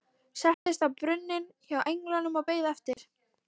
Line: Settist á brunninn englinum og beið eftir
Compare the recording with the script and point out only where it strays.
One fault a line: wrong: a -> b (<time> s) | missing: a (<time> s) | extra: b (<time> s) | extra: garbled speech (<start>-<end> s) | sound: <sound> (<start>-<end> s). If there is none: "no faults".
sound: dropout (0.5-0.7 s)
extra: hjá (1.7 s)
sound: dropout (2.9-3.0 s)